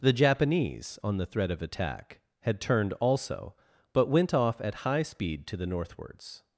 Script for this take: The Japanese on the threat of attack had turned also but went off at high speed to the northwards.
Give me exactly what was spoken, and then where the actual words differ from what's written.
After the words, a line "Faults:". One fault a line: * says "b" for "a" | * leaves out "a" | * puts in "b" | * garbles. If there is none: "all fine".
The Japanese on the threat of attack had turned also but went off at high speed to the northwards.
Faults:
all fine